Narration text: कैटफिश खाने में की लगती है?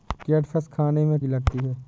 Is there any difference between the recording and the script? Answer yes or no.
no